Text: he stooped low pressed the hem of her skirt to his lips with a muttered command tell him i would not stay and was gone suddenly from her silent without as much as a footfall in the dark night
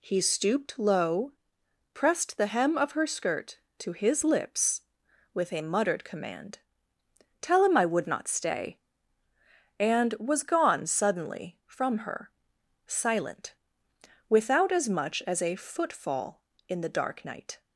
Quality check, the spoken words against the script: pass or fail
pass